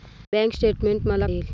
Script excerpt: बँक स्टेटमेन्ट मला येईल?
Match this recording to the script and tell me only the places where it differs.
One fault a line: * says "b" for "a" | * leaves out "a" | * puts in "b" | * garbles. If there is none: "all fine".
all fine